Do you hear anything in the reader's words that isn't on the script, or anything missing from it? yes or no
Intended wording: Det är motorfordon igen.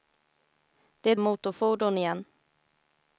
no